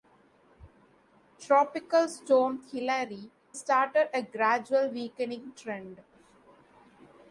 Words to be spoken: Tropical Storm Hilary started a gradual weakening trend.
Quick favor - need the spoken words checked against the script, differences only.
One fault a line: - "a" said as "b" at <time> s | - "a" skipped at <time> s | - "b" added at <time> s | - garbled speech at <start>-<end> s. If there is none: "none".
none